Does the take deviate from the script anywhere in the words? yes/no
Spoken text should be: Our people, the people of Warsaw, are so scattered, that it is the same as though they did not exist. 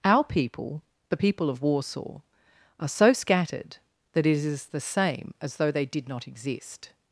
no